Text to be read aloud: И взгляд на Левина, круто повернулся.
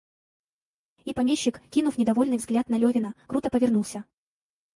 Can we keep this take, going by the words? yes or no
no